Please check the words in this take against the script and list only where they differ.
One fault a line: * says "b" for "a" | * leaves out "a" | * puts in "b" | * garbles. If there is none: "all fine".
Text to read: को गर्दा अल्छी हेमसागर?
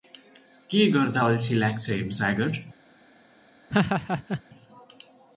* says "के" for "को"
* puts in "लाग्छ"